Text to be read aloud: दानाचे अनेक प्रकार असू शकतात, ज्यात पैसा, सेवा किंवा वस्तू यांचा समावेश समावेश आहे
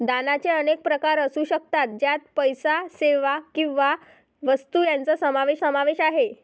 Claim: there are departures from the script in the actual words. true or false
false